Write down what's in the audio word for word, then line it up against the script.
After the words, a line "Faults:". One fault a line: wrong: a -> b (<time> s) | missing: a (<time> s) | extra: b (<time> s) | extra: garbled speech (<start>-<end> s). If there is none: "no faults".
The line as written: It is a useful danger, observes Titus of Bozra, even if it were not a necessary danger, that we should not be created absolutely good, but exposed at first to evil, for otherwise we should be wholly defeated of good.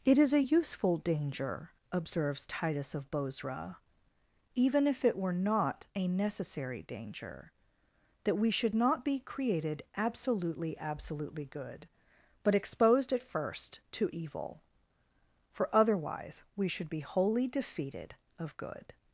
It is a useful danger, observes Titus of Bozra, even if it were not a necessary danger, that we should not be created absolutely absolutely good, but exposed at first to evil, for otherwise we should be wholly defeated of good.
Faults:
extra: absolutely (10.8 s)